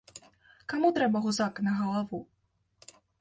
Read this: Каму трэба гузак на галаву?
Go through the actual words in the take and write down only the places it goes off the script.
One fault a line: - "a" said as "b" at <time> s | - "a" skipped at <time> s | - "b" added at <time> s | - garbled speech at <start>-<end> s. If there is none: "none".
none